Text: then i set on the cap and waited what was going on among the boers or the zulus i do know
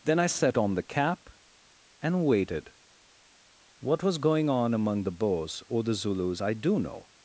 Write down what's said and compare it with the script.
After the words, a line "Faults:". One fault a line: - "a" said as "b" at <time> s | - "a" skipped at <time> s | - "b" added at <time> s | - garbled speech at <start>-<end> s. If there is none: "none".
then i set on the cap and waited what was going on among the boers or the zulus i do know
Faults:
none